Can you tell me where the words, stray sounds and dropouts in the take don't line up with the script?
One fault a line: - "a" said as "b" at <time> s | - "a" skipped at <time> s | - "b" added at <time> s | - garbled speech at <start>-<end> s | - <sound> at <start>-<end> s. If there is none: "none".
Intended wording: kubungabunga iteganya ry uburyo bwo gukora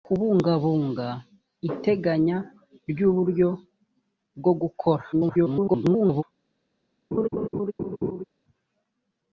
- garbled speech at 5.1-6.2 s
- laugh at 7.1-8.3 s